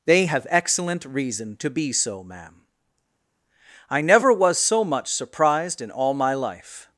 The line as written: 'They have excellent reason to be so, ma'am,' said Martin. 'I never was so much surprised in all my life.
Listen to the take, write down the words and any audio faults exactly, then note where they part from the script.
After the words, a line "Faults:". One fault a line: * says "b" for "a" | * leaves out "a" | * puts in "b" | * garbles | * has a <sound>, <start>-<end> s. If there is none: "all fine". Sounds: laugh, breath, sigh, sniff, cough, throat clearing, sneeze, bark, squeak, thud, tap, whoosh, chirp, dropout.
'They have excellent reason to be so, ma'am,' 'I never was so much surprised in all my life.
Faults:
* leaves out "said Martin"